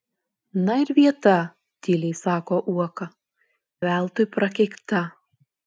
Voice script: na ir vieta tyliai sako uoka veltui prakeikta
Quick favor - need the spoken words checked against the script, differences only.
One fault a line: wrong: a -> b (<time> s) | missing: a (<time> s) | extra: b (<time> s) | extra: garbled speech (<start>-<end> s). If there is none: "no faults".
no faults